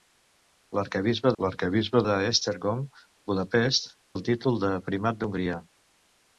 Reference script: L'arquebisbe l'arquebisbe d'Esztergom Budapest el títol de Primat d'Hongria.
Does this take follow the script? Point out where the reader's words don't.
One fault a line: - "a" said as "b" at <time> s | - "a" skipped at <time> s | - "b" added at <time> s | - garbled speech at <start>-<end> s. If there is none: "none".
none